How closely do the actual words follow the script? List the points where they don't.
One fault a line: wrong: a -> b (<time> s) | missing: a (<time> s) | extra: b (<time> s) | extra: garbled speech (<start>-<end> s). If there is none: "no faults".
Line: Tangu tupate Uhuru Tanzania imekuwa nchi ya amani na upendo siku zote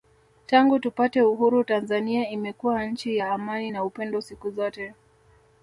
no faults